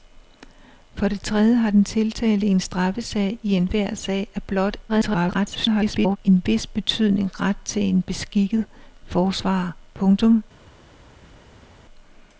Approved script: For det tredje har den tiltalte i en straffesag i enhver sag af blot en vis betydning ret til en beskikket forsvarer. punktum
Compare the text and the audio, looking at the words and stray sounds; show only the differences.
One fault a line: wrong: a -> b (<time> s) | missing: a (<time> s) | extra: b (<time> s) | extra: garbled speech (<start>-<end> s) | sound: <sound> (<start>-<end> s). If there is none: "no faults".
extra: garbled speech (4.9-6.2 s)